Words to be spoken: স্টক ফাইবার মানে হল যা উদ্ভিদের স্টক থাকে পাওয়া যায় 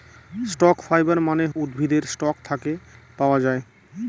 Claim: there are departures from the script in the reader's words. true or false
true